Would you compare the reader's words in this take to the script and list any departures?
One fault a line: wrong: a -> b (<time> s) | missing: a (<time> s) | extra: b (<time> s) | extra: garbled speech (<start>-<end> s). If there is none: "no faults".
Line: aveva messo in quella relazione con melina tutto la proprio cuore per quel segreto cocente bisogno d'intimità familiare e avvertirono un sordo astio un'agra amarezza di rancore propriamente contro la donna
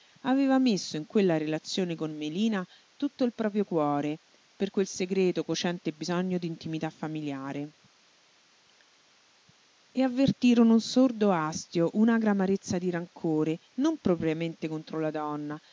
wrong: la -> il (3.2 s)
extra: non (13.7 s)